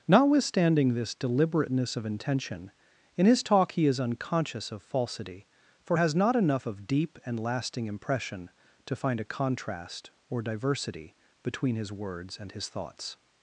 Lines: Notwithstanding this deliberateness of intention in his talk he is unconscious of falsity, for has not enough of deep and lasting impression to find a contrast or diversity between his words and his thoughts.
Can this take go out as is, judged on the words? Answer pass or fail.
pass